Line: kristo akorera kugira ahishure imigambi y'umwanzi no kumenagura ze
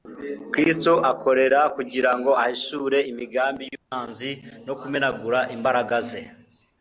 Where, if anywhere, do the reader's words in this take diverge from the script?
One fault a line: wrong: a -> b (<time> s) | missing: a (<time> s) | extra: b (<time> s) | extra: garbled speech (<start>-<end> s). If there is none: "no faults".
extra: ngo (2.2 s)
extra: imbaraga (5.5 s)